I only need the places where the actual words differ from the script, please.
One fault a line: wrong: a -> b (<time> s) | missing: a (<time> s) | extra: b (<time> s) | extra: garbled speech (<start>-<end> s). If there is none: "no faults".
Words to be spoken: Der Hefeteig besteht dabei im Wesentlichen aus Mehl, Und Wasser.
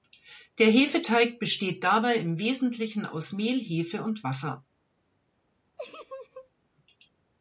extra: Hefe (3.6 s)